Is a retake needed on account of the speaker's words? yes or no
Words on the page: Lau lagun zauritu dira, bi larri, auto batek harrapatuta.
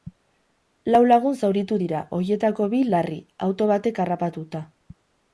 yes